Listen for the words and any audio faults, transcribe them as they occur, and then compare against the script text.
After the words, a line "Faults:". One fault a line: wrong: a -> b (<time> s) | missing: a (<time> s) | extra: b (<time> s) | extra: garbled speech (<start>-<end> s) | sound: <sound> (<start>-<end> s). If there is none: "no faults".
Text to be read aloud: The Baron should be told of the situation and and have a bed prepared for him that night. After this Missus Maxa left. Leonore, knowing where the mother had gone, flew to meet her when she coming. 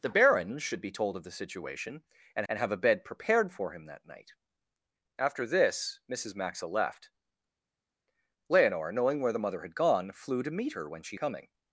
The Baron should be told of the situation and and have a bed prepared for him that night. After this Missus Maxa left. Leonore, knowing where the mother had gone, flew to meet her when she coming.
Faults:
no faults